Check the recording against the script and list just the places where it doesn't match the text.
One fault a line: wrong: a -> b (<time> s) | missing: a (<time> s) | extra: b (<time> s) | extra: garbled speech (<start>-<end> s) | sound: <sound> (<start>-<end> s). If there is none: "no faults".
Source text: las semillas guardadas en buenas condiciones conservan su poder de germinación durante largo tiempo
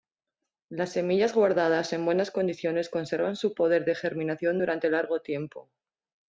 no faults